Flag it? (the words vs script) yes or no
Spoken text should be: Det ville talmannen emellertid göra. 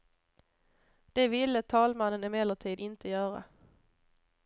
yes